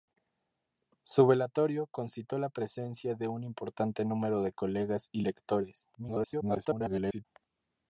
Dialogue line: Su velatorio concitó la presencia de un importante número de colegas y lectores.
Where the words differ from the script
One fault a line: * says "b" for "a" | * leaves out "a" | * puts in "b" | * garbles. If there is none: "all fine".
* garbles